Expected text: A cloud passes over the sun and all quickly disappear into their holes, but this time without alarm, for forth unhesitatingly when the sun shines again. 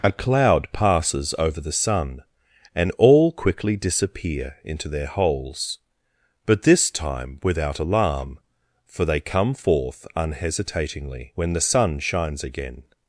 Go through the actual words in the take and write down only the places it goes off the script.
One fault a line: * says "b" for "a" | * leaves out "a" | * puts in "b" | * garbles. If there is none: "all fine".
* puts in "they come"